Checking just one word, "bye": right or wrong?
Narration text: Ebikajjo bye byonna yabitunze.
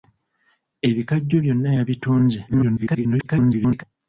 wrong